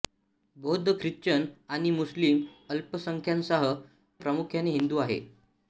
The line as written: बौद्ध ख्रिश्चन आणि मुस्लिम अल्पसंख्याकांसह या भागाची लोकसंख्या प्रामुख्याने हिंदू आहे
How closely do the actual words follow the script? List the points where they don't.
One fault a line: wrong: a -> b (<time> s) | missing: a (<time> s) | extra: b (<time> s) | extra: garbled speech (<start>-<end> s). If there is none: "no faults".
missing: या भागाची लोकसंख्या (3.7 s)